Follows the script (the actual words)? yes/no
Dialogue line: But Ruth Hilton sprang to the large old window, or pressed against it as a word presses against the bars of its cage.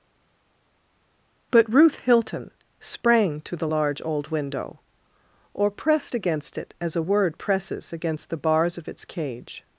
yes